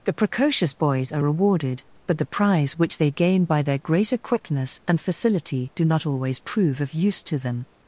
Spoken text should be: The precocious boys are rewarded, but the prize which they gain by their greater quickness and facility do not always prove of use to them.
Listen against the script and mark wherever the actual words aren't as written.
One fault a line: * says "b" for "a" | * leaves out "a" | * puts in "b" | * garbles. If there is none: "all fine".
all fine